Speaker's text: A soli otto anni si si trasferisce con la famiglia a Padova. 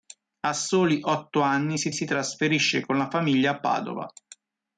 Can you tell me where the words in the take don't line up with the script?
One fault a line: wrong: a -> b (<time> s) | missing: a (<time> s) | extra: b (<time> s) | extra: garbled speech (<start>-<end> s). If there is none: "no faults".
no faults